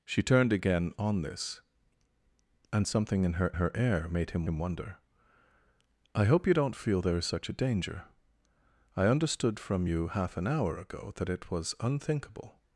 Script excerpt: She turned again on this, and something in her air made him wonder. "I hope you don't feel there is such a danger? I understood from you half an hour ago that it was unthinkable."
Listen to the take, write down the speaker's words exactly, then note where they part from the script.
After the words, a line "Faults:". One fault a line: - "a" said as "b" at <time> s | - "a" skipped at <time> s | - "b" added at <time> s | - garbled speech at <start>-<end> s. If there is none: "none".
She turned again on this, and something in her her air made him him wonder. "I hope you don't feel there is such a danger? I understood from you half an hour ago that it was unthinkable."
Faults:
- "her" added at 3.5 s
- "him" added at 4.4 s